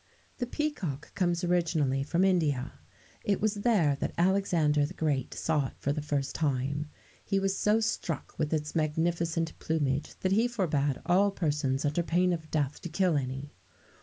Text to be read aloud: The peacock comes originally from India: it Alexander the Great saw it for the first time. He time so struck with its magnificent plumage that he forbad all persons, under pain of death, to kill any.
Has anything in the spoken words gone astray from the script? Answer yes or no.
yes